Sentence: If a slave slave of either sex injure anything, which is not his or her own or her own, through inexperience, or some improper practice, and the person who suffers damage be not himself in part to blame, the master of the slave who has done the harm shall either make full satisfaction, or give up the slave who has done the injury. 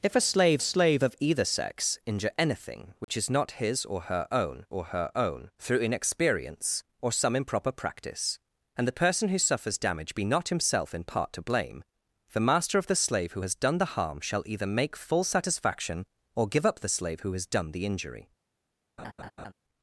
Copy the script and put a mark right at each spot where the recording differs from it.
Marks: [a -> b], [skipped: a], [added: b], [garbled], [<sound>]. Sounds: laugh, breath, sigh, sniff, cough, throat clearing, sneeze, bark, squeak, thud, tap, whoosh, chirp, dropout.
If a slave slave of either sex injure anything, which [dropout] is not his or her own or her own, through inexperience, or some improper practice, and the person who suffers damage be not himself in part to blame, the master of the slave who has done the harm shall either make full satisfaction, or give up the slave who has done the injury. [laugh]